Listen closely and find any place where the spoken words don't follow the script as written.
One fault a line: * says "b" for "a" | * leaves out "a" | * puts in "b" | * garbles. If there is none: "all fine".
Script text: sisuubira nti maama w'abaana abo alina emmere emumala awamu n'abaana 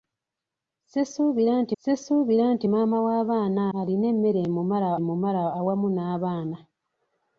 * puts in "sisuubira nti"
* leaves out "abo"
* puts in "emumala"